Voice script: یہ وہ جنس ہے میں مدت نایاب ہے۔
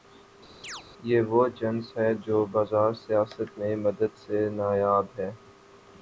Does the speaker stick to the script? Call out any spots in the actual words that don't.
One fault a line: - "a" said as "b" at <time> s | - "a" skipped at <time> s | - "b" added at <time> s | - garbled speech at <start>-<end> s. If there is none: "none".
- "جو بازار سیاست" added at 2.2 s
- "سے" added at 4.2 s